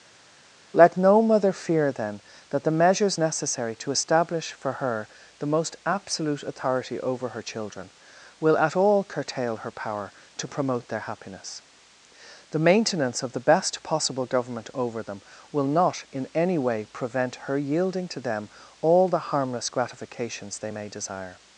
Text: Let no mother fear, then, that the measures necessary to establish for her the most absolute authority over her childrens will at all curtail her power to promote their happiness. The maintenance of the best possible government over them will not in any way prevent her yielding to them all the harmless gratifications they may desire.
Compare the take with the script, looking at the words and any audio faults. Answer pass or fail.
fail